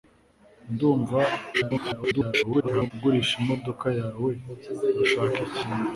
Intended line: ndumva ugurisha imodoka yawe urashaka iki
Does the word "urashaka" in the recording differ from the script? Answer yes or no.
no